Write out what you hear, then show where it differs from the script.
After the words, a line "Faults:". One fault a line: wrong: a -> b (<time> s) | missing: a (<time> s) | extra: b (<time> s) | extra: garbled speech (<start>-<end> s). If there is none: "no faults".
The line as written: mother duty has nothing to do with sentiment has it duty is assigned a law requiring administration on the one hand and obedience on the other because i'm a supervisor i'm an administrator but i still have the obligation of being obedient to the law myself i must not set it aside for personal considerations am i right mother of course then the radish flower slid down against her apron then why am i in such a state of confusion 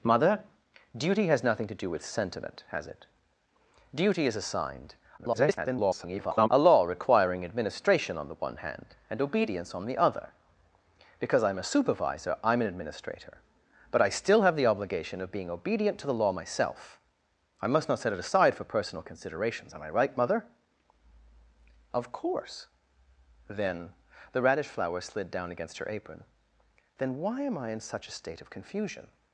mother duty has nothing to do with sentiment has it duty is assigned [garbled] a law requiring administration on the one hand and obedience on the other because i'm a supervisor i'm an administrator but i still have the obligation of being obedient to the law myself i must not set it aside for personal considerations am i right mother of course then the radish flower slid down against her apron then why am i in such a state of confusion
Faults:
extra: garbled speech (5.2-6.5 s)